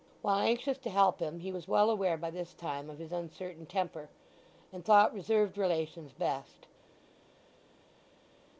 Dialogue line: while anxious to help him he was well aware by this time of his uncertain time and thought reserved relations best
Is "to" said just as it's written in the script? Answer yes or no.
yes